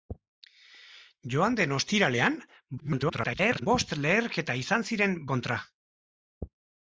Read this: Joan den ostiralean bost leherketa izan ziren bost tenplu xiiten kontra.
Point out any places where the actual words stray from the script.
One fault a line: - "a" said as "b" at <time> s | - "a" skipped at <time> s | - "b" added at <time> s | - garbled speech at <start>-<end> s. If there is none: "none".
- garbled speech at 2.8-3.7 s
- "bost tenplu xiiten" skipped at 5.1 s